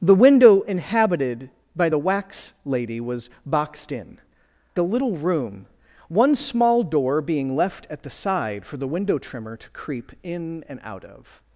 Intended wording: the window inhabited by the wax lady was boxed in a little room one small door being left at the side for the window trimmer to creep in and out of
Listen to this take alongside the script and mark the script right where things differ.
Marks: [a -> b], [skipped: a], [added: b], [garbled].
the window inhabited by the wax lady was boxed in a little room one small door being left at the side for the window trimmer to creep in and out of